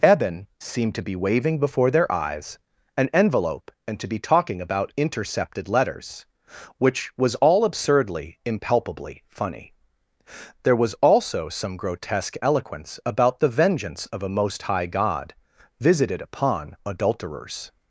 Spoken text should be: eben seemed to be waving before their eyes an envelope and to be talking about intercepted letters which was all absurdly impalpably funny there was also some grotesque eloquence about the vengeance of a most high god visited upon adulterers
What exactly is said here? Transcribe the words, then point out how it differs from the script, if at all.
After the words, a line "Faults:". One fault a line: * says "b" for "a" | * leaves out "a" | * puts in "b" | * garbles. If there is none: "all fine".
eben seemed to be waving before their eyes an envelope and to be talking about intercepted letters which was all absurdly impalpably funny there was also some grotesque eloquence about the vengeance of a most high god visited upon adulterers
Faults:
all fine